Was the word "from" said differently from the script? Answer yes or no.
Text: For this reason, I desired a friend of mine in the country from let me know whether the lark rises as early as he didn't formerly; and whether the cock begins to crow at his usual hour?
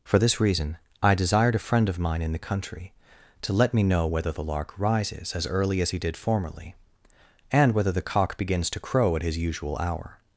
yes